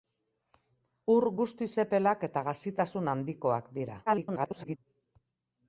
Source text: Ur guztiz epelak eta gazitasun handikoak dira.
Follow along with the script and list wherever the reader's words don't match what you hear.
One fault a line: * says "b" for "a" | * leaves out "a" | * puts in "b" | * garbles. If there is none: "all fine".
* garbles